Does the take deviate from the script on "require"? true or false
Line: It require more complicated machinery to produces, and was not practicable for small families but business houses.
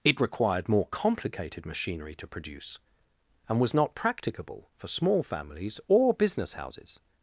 true